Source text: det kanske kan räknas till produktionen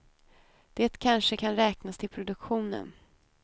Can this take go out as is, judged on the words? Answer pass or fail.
pass